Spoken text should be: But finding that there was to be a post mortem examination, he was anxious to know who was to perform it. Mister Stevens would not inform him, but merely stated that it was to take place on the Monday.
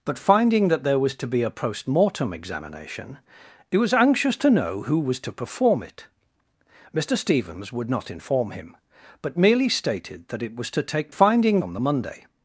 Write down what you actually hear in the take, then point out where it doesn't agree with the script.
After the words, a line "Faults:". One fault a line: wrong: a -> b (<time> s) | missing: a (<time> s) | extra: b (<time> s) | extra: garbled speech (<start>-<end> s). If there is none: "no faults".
But finding that there was to be a post mortem examination, he was anxious to know who was to perform it. Mister Stevens would not inform him, but merely stated that it was to take finding on the Monday.
Faults:
wrong: place -> finding (11.1 s)